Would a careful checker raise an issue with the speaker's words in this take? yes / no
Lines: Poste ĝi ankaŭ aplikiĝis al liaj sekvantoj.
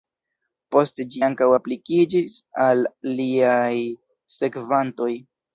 no